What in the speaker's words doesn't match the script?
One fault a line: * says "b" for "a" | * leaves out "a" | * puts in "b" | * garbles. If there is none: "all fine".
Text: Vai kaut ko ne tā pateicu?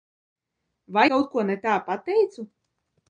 all fine